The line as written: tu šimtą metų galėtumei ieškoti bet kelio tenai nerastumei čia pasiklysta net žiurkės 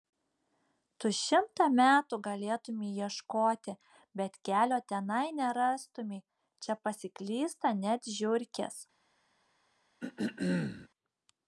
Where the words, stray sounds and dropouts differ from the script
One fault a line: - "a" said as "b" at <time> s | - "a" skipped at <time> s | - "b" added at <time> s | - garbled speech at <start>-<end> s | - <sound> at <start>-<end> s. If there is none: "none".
- throat clearing at 10.0-10.9 s